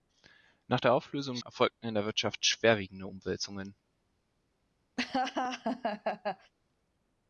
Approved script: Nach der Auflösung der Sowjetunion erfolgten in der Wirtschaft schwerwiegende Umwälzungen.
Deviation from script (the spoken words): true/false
true